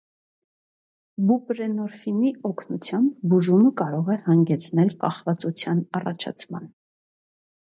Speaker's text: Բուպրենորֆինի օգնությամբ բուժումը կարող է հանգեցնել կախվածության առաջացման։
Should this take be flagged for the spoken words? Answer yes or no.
no